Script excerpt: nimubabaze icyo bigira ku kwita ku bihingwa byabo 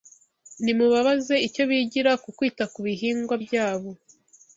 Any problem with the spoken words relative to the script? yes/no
no